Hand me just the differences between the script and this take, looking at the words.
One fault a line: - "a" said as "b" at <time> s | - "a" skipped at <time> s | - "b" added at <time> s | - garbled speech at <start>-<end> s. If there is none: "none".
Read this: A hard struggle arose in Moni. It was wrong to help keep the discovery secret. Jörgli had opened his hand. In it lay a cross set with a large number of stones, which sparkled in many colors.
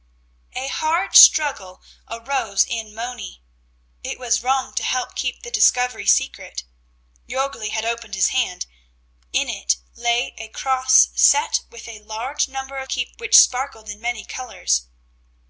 - "stones" said as "keep" at 12.9 s